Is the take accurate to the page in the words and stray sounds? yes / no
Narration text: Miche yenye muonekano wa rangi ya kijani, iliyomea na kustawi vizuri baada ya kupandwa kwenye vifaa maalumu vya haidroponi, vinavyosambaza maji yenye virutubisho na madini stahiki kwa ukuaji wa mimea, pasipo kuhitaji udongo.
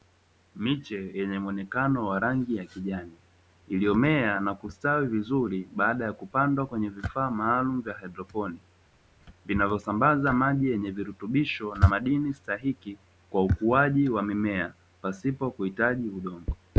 yes